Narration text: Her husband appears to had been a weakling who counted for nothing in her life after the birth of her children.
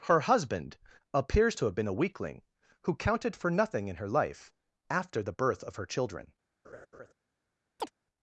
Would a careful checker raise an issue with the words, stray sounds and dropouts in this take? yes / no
yes